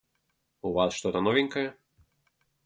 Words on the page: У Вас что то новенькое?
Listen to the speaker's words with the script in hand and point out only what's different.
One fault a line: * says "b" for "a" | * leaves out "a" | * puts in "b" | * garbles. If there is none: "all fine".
all fine